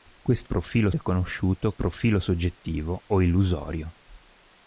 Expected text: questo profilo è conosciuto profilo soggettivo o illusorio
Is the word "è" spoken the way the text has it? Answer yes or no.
yes